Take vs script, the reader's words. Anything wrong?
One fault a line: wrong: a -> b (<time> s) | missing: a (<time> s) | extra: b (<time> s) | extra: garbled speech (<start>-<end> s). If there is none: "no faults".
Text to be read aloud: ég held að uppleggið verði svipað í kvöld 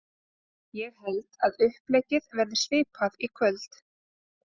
no faults